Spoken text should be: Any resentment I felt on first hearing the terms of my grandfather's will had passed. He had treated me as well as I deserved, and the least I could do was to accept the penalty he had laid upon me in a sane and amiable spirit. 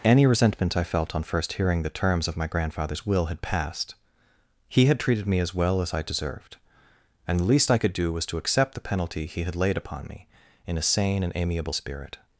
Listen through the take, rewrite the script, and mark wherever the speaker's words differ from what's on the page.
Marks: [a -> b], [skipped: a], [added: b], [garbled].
Any resentment I felt on first hearing the terms of my grandfather's will had passed. He had treated me as well as I deserved, and the least I could do was to accept the penalty he had laid upon me in a sane and amiable spirit.